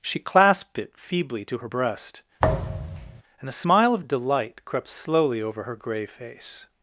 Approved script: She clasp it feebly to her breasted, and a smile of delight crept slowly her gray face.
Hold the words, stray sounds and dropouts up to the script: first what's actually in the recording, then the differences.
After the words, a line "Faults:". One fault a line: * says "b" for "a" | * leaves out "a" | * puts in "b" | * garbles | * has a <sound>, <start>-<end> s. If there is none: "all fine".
She clasped it feebly to her breast, and a smile of delight crept slowly over her gray face.
Faults:
* says "clasped" for "clasp"
* says "breast" for "breasted"
* has a thud, 2.4-3.2 s
* puts in "over"